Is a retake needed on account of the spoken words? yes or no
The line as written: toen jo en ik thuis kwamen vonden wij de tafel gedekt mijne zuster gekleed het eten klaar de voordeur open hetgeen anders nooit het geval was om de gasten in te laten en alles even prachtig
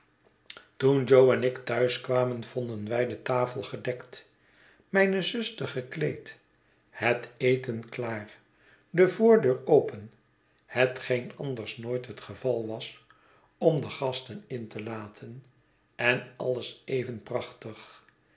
no